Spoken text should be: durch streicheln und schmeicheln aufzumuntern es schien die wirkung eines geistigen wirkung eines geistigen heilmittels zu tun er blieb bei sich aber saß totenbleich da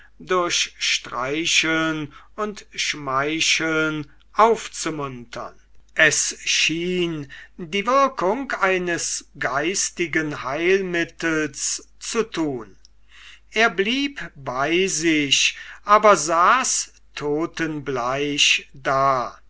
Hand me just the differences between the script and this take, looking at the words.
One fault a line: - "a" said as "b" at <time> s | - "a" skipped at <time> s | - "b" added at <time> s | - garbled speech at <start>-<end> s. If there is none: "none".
- "wirkung eines geistigen" skipped at 10.4 s